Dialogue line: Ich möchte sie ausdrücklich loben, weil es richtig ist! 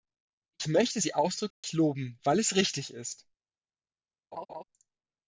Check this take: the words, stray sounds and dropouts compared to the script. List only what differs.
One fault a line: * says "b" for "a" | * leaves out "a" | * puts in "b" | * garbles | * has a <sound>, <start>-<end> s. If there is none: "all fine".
* has a dropout, 1.5-1.6 s
* has a laugh, 4.3-4.6 s